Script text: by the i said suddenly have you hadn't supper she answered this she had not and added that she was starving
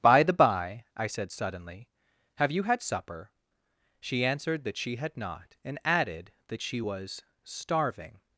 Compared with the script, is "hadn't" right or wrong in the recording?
wrong